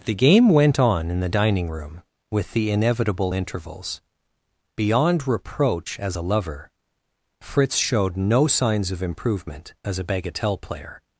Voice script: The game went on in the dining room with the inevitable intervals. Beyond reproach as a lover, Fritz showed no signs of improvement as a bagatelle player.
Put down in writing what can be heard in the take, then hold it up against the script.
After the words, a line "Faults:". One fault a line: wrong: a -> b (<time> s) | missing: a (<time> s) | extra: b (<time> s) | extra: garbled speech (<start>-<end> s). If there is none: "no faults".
The game went on in the dining room with the inevitable intervals. Beyond reproach as a lover, Fritz showed no signs of improvement as a bagatelle player.
Faults:
no faults